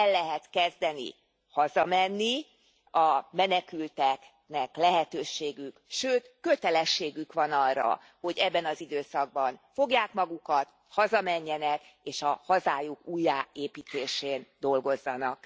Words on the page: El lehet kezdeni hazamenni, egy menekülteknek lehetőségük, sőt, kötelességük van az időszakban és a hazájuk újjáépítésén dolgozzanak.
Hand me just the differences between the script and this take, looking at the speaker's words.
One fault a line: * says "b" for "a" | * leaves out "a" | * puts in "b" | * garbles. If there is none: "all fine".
* says "a" for "egy"
* puts in "arra hogy ebben"
* puts in "fogják magukat hazamenjenek"